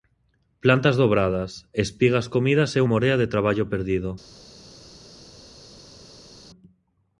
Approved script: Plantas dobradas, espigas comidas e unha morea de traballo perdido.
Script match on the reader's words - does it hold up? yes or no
no